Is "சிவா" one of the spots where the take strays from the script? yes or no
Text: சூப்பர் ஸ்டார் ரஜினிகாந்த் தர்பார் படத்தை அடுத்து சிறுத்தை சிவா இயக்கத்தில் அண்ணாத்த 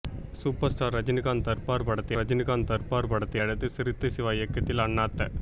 no